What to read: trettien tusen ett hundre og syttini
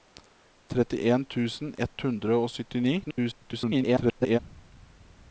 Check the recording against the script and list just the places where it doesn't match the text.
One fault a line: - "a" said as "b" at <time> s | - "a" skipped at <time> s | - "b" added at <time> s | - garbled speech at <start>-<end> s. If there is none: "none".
- garbled speech at 3.0-4.4 s